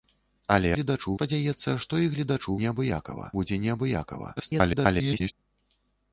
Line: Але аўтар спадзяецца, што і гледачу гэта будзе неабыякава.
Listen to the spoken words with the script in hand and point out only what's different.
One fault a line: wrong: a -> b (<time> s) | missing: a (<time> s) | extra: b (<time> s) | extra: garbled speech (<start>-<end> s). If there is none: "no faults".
wrong: аўтар -> гледачу (0.7 s)
wrong: гэта -> неабыякава (2.6 s)
extra: garbled speech (4.4-5.3 s)